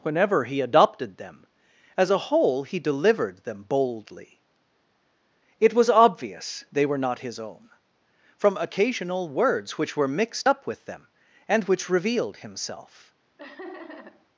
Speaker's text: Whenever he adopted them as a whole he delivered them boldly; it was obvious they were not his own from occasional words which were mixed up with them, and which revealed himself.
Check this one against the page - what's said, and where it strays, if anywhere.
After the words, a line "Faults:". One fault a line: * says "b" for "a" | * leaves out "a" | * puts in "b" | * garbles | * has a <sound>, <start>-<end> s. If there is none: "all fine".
Whenever he adopted them as a whole he delivered them boldly; it was obvious they were not his own from occasional words which were mixed up with them, and which revealed himself.
Faults:
* has a laugh, 13.4-14.3 s